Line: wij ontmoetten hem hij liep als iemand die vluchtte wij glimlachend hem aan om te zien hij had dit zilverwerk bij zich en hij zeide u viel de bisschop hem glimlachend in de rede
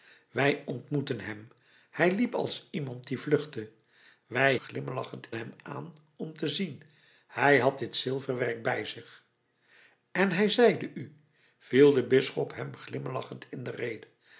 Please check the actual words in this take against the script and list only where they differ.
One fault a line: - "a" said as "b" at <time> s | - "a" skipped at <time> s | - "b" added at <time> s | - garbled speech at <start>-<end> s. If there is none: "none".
none